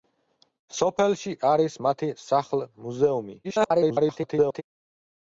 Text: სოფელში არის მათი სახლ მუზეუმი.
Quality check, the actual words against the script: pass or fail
fail